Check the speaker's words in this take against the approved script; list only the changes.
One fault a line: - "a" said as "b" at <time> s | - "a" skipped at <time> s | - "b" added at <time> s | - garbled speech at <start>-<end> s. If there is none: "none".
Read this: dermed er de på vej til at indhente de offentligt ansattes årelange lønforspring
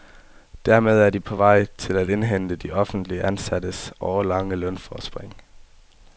none